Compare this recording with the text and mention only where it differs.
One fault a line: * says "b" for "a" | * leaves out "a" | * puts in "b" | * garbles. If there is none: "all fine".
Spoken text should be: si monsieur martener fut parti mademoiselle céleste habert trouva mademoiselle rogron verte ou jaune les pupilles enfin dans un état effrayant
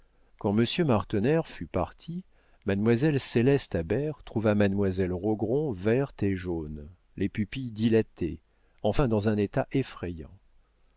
* says "quand" for "si"
* says "et" for "ou"
* puts in "dilatées"